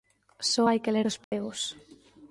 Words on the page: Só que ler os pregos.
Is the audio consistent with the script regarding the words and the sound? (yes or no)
no